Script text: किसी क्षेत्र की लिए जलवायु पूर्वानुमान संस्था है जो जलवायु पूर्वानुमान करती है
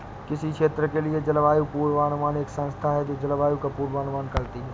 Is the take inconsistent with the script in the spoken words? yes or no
yes